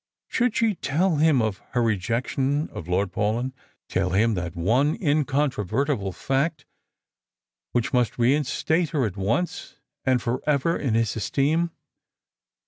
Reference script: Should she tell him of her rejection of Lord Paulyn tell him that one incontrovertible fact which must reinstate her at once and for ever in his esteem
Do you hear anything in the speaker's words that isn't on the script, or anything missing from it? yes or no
no